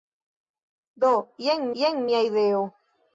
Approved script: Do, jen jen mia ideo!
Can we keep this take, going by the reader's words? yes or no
yes